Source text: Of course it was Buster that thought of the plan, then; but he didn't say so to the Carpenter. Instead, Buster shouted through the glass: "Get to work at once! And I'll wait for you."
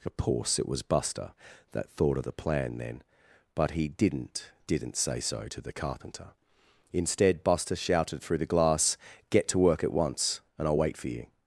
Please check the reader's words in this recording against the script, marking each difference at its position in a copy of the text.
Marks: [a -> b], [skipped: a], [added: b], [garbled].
Of course it was Buster that thought of the plan, then; but he didn't [added: didn't] say so to the Carpenter. Instead, Buster shouted through the glass: "Get to work at once! And I'll wait for you."